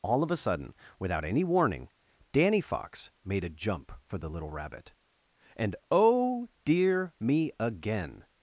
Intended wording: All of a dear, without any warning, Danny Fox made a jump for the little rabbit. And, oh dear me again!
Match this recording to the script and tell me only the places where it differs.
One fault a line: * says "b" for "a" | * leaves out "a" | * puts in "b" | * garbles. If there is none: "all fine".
* says "sudden" for "dear"